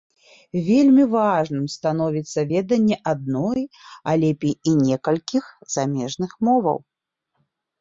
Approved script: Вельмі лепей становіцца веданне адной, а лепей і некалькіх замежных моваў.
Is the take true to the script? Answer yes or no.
no